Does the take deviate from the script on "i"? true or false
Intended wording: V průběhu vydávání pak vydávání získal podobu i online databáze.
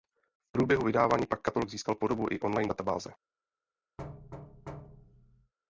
false